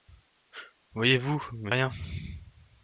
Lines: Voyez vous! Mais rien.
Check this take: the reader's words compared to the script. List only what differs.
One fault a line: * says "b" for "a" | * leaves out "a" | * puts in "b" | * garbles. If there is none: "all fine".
all fine